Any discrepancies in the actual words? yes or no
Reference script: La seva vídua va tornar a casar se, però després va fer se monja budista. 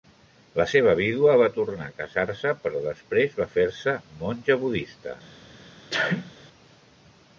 no